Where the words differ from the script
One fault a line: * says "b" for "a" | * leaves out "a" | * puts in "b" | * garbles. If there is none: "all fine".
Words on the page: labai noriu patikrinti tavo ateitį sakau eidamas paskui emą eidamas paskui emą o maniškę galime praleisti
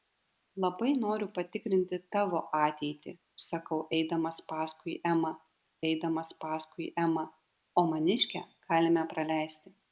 all fine